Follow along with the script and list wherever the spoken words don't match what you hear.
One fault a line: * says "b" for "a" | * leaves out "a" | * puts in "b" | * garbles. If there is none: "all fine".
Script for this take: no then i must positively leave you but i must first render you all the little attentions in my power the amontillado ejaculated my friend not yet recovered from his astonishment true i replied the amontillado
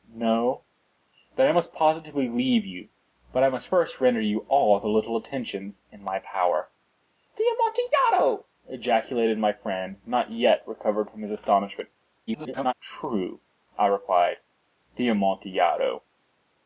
* garbles